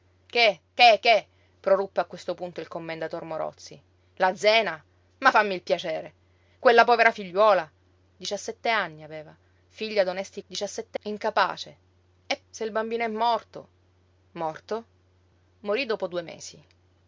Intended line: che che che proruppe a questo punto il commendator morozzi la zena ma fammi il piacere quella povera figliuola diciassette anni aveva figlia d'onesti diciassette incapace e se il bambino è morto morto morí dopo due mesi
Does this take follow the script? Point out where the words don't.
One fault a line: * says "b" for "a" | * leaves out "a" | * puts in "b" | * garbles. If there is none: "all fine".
all fine